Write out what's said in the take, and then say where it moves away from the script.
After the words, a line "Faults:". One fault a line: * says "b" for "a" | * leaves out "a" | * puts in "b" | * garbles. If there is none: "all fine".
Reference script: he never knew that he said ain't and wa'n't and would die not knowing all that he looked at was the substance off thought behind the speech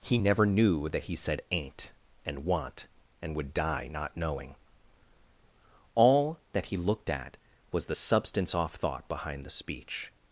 he never knew that he said ain't and wa'n't and would die not knowing all that he looked at was the substance off thought behind the speech
Faults:
all fine